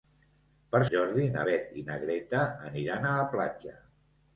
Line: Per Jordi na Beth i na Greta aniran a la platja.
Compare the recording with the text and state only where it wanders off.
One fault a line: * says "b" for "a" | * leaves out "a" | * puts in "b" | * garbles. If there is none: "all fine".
all fine